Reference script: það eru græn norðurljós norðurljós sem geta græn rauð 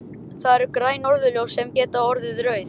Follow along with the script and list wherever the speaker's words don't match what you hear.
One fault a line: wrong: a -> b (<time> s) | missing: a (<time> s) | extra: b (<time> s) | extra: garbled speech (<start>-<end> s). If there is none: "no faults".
missing: norðurljós (1.6 s)
wrong: græn -> orðið (2.1 s)